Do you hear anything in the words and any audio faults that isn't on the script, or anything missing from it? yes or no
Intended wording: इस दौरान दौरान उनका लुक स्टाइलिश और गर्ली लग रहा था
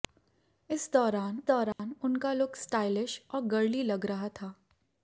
yes